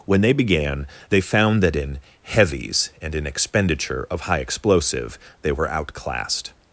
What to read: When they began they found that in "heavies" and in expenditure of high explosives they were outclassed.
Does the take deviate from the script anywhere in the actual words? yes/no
yes